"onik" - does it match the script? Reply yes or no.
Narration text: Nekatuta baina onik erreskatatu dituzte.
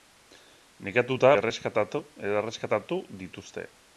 no